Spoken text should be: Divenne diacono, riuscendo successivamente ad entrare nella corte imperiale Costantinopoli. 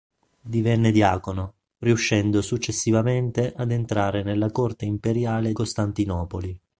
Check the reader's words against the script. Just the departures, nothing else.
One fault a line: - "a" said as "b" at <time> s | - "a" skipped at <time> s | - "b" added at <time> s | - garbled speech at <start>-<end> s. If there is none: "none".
none